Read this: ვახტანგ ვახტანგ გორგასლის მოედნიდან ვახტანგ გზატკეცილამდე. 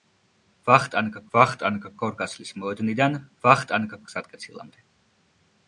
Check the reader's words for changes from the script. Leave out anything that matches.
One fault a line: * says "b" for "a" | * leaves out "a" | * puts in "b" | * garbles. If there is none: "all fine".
all fine